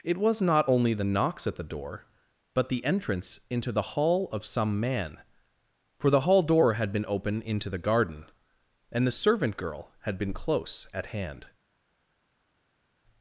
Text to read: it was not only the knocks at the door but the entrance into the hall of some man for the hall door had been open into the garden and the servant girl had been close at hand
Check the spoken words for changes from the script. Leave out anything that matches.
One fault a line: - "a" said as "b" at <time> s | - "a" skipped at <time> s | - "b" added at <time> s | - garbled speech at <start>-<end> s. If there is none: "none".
none